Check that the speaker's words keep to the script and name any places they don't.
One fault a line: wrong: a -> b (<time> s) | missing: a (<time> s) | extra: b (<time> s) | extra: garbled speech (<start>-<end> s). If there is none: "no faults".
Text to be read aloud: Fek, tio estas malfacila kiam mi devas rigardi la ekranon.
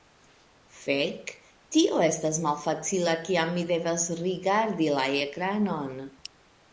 no faults